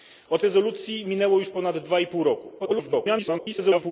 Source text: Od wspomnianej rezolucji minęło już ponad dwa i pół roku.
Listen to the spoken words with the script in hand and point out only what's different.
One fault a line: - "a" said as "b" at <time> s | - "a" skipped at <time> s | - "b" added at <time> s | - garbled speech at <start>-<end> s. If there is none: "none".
- "wspomnianej" skipped at 0.4 s
- garbled speech at 2.6-3.9 s